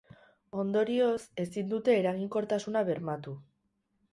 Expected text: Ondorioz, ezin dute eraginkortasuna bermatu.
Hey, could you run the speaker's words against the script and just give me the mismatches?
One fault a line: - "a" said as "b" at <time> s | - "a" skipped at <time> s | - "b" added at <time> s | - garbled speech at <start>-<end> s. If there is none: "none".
none